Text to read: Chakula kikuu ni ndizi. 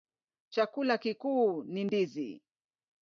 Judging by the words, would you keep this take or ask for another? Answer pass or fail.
pass